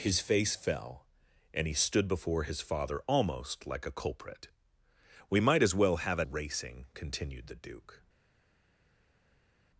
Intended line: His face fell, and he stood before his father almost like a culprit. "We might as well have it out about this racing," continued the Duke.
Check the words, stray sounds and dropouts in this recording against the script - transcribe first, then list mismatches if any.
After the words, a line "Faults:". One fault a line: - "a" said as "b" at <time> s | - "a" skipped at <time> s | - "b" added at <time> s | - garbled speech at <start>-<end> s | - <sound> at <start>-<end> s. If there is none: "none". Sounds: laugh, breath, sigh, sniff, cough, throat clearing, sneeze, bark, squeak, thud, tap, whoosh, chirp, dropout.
His face fell, and he stood before his father almost like a culprit. "We might as well have it racing," continued the Duke.
Faults:
- "out about this" skipped at 6.3 s